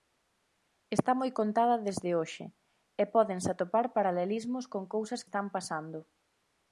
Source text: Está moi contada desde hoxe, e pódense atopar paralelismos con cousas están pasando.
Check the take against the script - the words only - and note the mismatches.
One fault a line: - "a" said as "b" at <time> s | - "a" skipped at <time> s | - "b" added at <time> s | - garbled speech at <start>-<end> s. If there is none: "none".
none